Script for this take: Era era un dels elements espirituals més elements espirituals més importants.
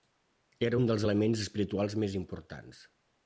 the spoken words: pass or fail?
fail